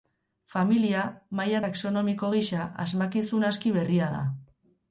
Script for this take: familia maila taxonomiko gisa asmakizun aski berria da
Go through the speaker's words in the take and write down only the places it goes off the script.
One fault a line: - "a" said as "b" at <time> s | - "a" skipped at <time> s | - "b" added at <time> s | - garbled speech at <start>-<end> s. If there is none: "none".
none